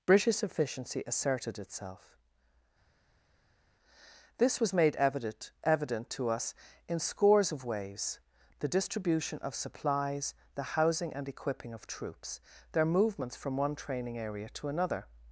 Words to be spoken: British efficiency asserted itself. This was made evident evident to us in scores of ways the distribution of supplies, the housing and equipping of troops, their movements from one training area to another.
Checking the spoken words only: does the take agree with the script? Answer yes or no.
yes